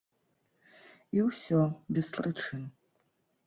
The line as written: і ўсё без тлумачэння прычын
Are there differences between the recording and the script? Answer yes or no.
yes